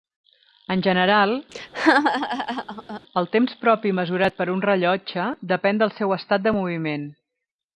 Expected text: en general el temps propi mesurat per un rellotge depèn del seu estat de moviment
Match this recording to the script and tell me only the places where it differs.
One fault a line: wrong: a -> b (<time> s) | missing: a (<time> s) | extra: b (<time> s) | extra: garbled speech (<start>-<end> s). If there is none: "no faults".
no faults